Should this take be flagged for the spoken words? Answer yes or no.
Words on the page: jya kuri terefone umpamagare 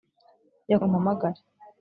yes